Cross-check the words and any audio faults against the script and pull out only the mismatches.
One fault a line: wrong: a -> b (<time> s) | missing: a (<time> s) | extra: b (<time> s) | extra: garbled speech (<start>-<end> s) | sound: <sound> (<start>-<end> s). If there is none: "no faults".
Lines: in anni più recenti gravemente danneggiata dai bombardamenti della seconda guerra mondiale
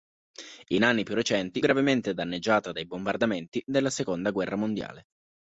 no faults